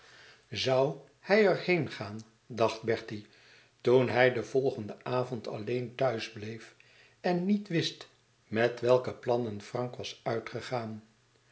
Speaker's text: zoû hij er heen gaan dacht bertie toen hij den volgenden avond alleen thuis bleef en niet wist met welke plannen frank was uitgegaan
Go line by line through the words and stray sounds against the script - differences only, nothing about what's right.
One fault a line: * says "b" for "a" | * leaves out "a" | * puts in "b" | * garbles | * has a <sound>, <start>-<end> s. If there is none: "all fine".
all fine